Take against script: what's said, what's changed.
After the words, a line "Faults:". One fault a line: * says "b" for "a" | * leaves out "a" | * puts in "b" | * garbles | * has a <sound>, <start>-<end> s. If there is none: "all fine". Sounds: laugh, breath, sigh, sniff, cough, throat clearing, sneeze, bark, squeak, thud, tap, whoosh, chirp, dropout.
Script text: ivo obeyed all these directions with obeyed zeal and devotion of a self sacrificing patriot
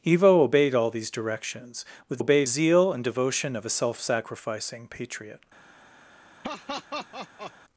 ivo obeyed all these directions with obeyed zeal and devotion of a self sacrificing patriot
Faults:
* has a laugh, 6.4-7.5 s